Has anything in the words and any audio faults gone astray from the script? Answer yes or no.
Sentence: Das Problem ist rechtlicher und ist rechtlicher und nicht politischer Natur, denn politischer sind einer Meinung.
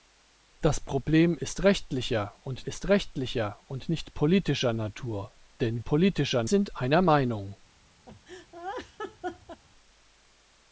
yes